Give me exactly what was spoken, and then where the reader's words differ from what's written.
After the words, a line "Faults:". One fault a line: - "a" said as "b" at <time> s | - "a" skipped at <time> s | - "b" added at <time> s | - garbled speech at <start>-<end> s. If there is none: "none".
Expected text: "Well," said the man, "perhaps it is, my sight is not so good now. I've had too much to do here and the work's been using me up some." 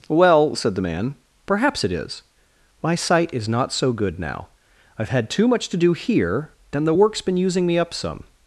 "Well," said the man, "perhaps it is, my sight is not so good now. I've had too much to do here and the work's been using me up some."
Faults:
none